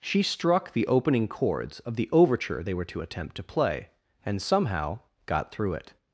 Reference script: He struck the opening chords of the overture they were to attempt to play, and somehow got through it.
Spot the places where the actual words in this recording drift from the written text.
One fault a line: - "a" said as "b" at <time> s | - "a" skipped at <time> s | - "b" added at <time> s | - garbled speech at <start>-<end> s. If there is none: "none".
- "He" said as "She" at 0.0 s